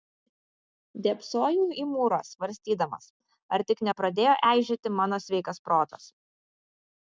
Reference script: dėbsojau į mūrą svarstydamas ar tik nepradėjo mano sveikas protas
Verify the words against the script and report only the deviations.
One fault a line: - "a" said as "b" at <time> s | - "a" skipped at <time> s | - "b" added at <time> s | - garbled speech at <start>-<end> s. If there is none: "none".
- "eižėti" added at 4.5 s